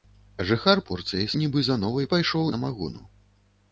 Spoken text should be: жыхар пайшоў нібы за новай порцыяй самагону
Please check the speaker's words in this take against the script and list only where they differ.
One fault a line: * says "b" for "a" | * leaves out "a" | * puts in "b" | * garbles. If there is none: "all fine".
* says "порцыяй" for "пайшоў"
* says "пайшоў" for "порцыяй"